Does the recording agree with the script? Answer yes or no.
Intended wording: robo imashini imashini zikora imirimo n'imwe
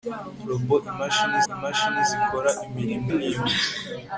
yes